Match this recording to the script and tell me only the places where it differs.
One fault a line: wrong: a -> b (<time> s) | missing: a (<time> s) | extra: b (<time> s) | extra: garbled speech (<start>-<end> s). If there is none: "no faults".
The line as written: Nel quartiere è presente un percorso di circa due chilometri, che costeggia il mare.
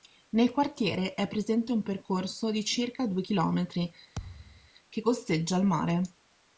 no faults